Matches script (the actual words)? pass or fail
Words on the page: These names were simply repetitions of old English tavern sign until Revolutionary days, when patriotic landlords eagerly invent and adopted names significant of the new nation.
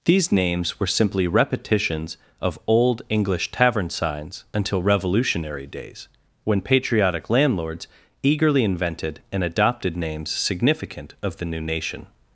fail